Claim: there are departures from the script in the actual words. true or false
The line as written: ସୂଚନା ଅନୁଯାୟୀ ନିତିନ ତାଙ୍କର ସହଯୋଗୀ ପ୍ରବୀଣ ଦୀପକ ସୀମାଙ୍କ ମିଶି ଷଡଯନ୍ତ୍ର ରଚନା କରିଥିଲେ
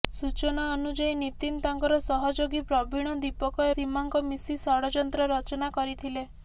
false